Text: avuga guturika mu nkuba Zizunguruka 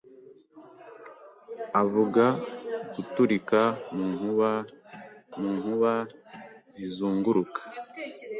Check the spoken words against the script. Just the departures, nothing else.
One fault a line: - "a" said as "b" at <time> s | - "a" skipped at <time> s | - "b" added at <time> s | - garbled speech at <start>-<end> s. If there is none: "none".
- "mu nkuba" added at 5.4 s